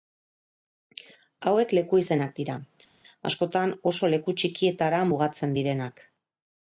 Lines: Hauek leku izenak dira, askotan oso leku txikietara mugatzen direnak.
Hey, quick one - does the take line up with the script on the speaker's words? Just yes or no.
yes